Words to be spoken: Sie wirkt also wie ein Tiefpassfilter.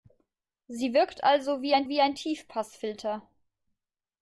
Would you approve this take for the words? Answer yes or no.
no